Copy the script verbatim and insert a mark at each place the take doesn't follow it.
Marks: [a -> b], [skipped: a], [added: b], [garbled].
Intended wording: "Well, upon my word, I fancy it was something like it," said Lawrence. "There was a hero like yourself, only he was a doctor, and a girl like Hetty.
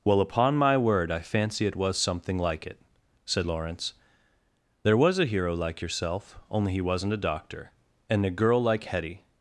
"Well, upon my word, I fancy it was something like it," said Lawrence. "There was a hero like yourself, only he [was -> wasn't] a doctor, and a girl like Hetty.